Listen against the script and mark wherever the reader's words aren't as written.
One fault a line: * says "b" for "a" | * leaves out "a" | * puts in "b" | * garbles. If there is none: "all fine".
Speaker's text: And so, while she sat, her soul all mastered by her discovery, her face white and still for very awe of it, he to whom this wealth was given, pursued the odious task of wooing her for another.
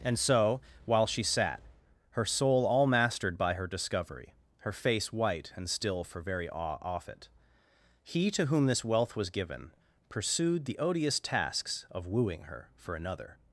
* says "off" for "of"
* says "tasks" for "task"